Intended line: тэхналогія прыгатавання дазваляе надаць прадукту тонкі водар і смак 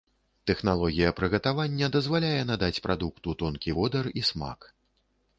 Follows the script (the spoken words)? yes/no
yes